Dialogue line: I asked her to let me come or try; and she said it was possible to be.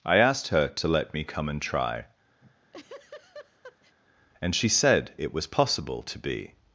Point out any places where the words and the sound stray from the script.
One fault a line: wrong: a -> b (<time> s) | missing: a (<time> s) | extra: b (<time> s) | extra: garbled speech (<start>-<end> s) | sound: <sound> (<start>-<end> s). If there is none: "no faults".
wrong: or -> and (1.5 s)
sound: laugh (2.4-4.0 s)